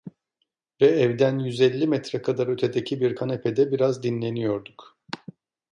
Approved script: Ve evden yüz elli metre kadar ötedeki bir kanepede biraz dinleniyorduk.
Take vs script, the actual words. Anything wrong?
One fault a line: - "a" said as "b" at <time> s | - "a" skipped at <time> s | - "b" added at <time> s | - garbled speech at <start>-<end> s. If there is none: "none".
none